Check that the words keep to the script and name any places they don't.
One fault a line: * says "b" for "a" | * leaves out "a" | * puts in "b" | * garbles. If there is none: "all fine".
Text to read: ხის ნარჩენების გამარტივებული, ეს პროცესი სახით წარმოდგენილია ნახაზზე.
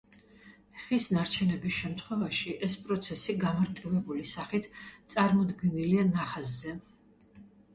* says "შემთხვევაში" for "გამარტივებული"
* puts in "გამარტივებული"